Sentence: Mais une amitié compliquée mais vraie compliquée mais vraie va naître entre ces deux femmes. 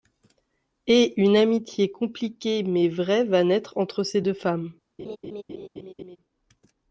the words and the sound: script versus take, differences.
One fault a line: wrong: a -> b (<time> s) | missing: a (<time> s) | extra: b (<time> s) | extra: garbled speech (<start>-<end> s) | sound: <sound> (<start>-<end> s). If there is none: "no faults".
wrong: Mais -> Et (0.9 s)
missing: compliquée mais vraie (3.2 s)
sound: laugh (5.0-6.2 s)